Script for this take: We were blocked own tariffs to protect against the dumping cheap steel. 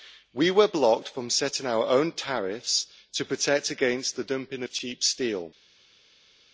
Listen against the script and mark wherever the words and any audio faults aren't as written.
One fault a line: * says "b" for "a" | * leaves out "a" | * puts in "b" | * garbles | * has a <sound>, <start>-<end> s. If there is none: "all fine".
* puts in "from setting our"
* puts in "of"